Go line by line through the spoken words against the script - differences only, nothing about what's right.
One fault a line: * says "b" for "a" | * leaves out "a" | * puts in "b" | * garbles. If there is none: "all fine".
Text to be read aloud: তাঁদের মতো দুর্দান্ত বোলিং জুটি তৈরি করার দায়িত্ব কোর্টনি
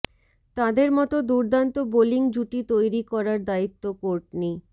all fine